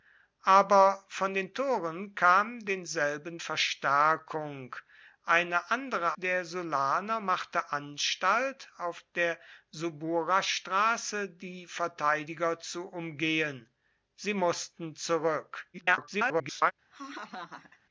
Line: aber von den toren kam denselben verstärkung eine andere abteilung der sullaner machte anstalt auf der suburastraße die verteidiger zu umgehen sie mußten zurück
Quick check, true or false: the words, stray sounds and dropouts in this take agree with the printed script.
false